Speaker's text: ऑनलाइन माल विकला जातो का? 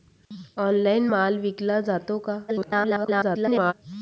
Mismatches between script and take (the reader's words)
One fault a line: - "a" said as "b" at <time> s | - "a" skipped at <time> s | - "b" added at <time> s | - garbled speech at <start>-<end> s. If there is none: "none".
- garbled speech at 2.5-3.7 s